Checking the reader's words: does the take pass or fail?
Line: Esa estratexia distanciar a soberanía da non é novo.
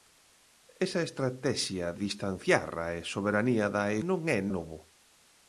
pass